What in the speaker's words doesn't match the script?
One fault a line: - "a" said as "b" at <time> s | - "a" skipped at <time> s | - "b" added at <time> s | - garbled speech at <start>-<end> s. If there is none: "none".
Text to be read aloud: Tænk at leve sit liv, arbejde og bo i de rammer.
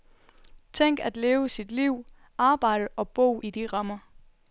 none